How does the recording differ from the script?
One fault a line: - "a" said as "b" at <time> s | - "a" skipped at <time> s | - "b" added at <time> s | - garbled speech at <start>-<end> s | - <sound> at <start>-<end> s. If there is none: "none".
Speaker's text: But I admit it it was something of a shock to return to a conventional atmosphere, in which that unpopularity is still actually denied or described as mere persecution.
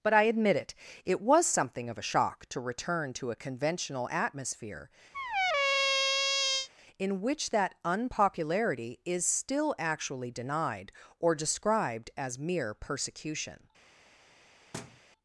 - squeak at 5.1-6.7 s
- thud at 14.7-15.0 s